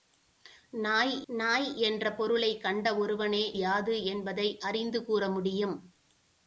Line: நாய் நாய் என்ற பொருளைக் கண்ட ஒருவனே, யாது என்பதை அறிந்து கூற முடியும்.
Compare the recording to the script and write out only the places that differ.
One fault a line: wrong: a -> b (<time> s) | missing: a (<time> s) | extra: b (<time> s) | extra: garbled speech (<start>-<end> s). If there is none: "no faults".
no faults